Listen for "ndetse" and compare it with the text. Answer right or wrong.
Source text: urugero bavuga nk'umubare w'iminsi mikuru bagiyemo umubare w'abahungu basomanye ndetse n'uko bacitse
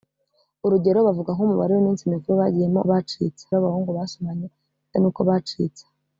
wrong